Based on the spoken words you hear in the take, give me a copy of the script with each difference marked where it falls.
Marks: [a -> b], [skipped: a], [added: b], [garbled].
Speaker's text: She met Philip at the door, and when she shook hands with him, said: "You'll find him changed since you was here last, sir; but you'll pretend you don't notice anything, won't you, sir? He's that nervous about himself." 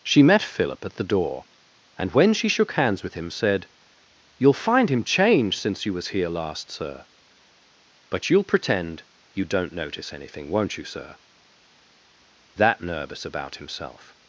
She met Philip at the door, and when she shook hands with him, said: "You'll find him changed since you was here last, sir; but you'll pretend you don't notice anything, won't you, sir? [skipped: He's] that nervous about himself."